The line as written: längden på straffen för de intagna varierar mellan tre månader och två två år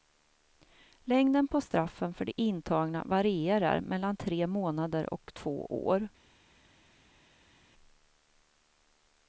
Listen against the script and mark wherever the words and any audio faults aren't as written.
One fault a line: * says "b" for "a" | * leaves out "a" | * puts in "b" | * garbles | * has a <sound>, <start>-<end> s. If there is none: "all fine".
* leaves out "två"